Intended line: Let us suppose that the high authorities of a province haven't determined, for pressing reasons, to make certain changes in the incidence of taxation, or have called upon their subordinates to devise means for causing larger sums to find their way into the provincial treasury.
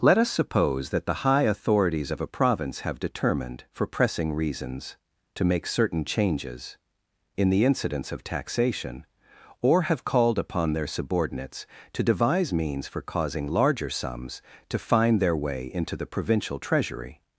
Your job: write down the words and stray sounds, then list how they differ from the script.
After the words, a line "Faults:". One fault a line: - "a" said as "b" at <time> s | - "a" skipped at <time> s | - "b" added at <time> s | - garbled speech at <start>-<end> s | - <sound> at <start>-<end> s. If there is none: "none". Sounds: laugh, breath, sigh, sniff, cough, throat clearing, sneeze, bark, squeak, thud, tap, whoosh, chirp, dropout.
Let us suppose that the high authorities of a province have determined, for pressing reasons, to make certain changes in the incidence of taxation, or have called upon their subordinates to devise means for causing larger sums to find their way into the provincial treasury.
Faults:
- "haven't" said as "have" at 2.8 s